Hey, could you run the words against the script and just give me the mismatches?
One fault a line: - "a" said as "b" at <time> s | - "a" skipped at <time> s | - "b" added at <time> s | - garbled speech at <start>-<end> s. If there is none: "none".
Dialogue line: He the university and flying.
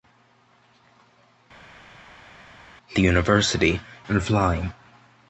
none